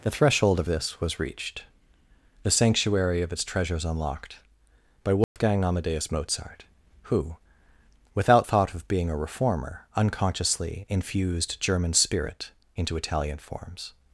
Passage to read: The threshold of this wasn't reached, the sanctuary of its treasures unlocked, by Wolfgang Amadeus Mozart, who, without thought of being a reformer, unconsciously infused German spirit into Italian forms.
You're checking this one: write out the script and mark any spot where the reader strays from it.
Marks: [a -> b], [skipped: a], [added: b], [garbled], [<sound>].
The threshold of this [wasn't -> was] reached, the sanctuary of its treasures unlocked, by Wolfgang [dropout] Amadeus Mozart, who, without thought of being a reformer, unconsciously infused German spirit into Italian forms.